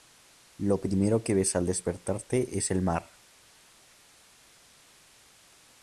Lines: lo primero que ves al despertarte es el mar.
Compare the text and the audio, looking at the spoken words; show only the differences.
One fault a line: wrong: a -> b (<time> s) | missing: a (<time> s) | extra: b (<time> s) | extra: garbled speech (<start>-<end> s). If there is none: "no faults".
no faults